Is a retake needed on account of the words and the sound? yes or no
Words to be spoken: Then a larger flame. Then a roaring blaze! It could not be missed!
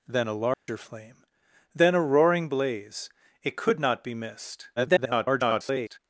yes